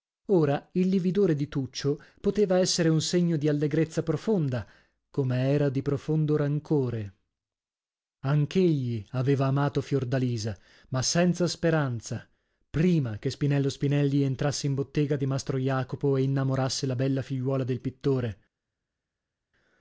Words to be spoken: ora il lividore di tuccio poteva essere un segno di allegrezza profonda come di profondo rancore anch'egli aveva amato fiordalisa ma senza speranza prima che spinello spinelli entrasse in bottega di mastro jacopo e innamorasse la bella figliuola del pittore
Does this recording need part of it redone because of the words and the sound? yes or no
yes